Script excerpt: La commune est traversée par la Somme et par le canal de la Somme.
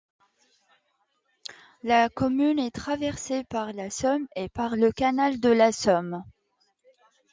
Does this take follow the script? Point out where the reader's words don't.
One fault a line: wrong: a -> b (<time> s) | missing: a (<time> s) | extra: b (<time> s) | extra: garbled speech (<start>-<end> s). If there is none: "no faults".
no faults